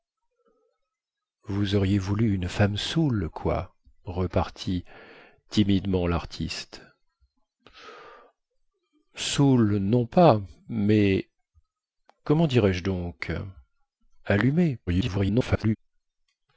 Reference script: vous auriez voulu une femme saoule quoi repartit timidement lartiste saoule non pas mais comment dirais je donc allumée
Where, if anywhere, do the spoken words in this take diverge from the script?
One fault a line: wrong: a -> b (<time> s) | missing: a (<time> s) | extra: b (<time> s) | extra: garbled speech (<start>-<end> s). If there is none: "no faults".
extra: garbled speech (14.9-15.8 s)